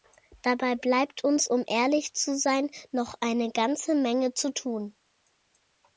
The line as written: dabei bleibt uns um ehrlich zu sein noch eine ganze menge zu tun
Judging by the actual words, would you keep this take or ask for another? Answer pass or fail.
pass